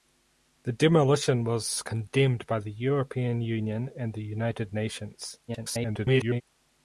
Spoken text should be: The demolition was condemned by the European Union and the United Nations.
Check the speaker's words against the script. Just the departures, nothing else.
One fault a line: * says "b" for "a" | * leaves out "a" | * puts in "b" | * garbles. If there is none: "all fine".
* garbles